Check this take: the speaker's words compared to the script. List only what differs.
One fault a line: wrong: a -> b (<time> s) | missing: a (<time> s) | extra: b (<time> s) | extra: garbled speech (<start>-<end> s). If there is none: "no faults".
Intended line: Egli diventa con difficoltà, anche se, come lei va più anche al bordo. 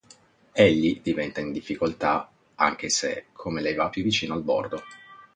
wrong: con -> in (1.4 s)
wrong: anche -> vicino (4.0 s)